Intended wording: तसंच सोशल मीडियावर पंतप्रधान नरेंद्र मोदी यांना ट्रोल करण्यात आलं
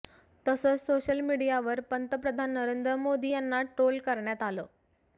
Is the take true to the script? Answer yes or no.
yes